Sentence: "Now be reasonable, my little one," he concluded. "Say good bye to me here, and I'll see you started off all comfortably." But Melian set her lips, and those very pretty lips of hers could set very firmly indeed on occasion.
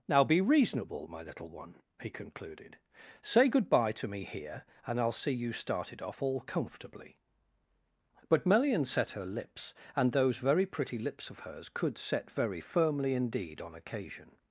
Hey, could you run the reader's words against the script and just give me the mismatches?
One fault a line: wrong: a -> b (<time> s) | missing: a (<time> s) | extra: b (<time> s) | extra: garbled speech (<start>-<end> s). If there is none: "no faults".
no faults